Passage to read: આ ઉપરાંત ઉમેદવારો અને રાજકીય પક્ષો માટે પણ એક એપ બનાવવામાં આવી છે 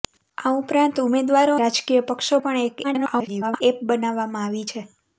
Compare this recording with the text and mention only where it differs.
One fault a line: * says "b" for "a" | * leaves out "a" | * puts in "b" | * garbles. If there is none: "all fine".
* leaves out "અને"
* leaves out "માટે"
* garbles